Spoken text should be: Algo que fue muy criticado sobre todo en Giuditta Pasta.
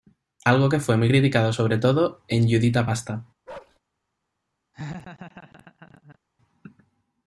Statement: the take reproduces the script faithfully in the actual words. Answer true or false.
true